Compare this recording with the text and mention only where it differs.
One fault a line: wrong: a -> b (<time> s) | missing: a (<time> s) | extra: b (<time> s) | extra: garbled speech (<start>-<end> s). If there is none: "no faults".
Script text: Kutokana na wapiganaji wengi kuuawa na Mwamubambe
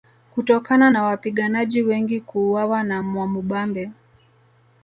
no faults